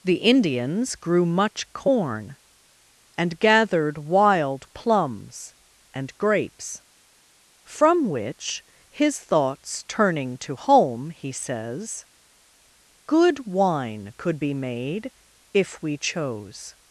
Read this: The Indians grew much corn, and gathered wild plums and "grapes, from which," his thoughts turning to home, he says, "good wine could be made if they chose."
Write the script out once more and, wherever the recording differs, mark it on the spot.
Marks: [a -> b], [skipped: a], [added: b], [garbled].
The Indians grew much corn, and gathered wild plums and "grapes, from which," his thoughts turning to home, he says, "good wine could be made if [they -> we] chose."